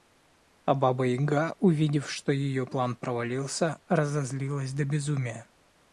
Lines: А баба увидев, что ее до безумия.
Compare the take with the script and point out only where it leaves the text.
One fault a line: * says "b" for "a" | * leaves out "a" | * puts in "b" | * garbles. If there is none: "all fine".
* puts in "яга"
* puts in "план провалился разозлилась"